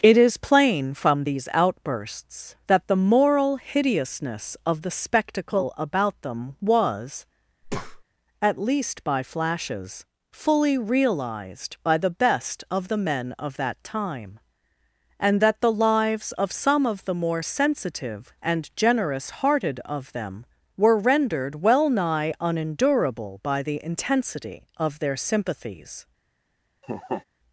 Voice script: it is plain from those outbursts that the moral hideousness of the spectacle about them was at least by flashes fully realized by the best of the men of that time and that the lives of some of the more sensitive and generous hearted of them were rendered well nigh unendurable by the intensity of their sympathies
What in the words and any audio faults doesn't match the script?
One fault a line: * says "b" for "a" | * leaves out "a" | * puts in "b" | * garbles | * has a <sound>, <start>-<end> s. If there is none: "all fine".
* says "these" for "those"
* has a breath, 7.6-8.0 s
* has a laugh, 26.8-27.2 s